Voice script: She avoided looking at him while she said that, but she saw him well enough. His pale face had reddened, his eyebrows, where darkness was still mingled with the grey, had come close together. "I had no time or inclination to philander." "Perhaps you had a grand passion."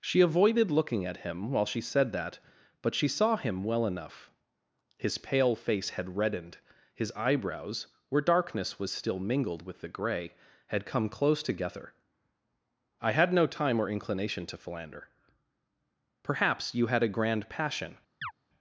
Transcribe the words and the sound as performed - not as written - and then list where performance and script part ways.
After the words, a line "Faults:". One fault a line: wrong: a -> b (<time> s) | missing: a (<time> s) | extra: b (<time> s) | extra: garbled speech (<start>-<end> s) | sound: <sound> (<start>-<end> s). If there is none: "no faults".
She avoided looking at him while she said that, but she saw him well enough. His pale face had reddened, his eyebrows, where darkness was still mingled with the grey, had come close together. "I had no time or inclination to philander." "Perhaps you had a grand passion."
Faults:
sound: chirp (18.2-18.3 s)